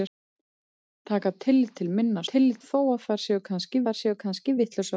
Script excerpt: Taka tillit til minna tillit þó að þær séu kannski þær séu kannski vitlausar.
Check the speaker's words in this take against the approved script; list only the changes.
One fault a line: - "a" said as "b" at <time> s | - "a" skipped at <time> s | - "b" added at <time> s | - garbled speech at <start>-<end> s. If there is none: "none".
none